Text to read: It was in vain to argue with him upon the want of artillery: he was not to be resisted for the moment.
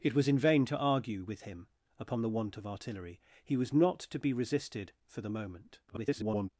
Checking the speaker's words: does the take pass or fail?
fail